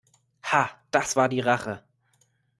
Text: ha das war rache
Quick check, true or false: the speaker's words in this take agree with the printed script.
false